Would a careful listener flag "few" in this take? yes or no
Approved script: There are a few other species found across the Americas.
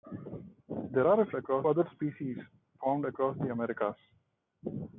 yes